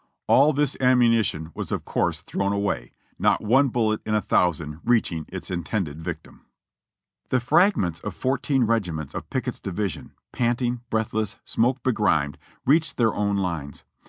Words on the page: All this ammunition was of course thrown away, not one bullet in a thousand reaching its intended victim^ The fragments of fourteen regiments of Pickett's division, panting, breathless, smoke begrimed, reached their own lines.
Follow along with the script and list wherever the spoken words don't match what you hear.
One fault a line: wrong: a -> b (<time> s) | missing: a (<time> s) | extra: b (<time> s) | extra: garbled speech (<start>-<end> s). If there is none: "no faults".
no faults